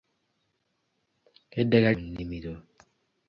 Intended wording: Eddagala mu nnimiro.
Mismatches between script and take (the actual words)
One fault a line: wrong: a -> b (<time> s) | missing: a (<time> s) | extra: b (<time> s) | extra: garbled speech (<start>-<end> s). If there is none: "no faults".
no faults